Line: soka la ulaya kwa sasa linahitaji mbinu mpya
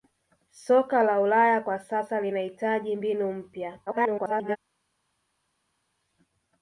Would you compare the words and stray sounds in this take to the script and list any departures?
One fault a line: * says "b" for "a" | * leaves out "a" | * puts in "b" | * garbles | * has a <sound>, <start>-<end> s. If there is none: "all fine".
* garbles